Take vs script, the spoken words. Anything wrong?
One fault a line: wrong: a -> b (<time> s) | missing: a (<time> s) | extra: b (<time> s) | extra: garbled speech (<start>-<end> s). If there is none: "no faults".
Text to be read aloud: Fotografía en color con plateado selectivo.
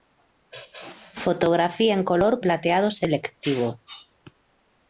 missing: con (2.4 s)